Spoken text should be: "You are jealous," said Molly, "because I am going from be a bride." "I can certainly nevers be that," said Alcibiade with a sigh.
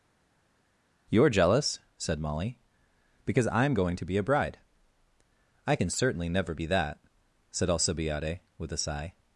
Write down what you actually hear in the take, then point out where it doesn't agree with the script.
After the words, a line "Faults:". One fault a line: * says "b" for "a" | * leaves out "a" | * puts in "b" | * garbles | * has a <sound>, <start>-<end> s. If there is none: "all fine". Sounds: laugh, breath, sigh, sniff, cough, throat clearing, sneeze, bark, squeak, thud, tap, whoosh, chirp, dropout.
"You are jealous," said Molly, "because I am going to be a bride." "I can certainly never be that," said Alcibiade with a sigh.
Faults:
* says "to" for "from"
* says "never" for "nevers"